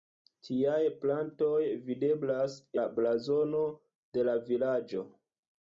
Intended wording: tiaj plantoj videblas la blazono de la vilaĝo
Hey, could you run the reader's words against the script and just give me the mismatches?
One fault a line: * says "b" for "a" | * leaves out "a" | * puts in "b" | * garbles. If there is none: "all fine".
all fine